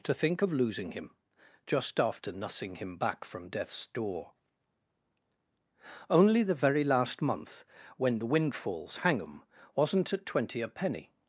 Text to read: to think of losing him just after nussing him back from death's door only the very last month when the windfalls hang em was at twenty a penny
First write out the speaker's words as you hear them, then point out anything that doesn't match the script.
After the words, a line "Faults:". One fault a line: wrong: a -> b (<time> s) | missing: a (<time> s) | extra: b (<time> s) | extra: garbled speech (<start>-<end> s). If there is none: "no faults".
to think of losing him just after nussing him back from death's door only the very last month when the windfalls hang em wasn't at twenty a penny
Faults:
wrong: was -> wasn't (9.7 s)